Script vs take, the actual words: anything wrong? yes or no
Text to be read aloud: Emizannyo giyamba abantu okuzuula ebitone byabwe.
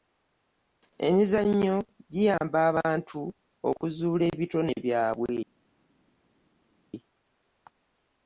no